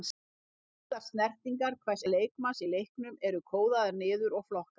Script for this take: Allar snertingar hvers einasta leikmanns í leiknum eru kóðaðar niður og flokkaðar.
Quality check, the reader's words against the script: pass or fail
fail